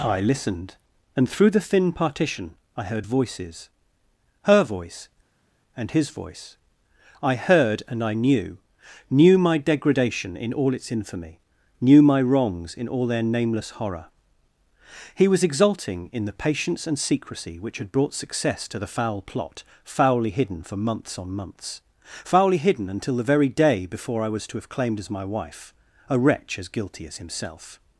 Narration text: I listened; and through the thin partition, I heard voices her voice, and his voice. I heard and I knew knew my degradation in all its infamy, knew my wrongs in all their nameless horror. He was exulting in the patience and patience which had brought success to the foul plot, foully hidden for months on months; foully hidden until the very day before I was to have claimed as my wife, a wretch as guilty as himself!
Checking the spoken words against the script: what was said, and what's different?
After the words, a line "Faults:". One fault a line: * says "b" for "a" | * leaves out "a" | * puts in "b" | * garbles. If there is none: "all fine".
I listened; and through the thin partition, I heard voices her voice, and his voice. I heard and I knew knew my degradation in all its infamy, knew my wrongs in all their nameless horror. He was exulting in the patience and secrecy which had brought success to the foul plot, foully hidden for months on months; foully hidden until the very day before I was to have claimed as my wife, a wretch as guilty as himself!
Faults:
* says "secrecy" for "patience"